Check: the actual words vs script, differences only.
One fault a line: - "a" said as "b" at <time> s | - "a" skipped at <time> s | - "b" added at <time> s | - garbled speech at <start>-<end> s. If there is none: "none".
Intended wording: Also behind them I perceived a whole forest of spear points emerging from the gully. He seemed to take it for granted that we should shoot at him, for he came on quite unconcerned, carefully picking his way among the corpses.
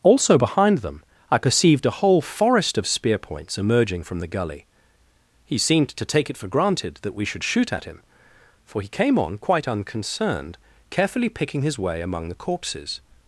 none